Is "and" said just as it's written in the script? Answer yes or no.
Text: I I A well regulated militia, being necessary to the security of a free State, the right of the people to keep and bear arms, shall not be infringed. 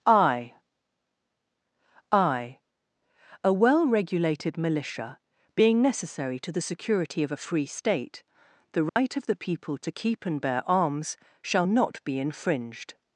yes